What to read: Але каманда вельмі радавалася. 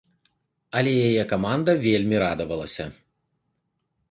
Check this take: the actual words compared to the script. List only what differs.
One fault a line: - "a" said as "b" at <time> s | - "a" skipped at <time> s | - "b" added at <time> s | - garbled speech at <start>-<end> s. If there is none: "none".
- "яе" added at 1.1 s